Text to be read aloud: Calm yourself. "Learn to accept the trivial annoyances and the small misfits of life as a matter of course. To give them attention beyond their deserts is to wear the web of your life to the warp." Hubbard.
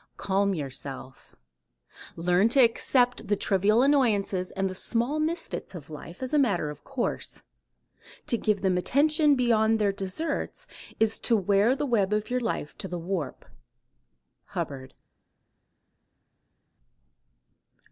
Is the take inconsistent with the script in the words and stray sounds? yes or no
no